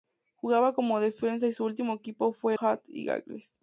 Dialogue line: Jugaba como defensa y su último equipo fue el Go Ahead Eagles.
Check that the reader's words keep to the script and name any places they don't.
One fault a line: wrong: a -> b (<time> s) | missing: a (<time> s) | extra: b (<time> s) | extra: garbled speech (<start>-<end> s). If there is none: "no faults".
missing: el Go (2.5 s)